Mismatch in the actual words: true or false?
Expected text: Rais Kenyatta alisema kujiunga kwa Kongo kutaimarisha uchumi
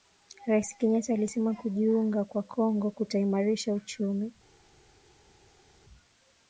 false